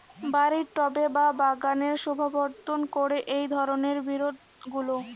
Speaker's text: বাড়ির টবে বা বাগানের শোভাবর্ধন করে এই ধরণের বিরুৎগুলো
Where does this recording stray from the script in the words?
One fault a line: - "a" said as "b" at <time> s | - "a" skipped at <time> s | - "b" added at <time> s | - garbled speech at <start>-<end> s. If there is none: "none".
none